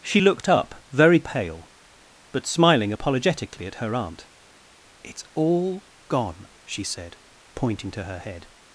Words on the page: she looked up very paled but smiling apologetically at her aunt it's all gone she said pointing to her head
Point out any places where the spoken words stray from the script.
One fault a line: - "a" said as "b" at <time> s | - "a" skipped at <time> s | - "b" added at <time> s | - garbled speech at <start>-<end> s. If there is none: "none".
- "paled" said as "pale" at 1.2 s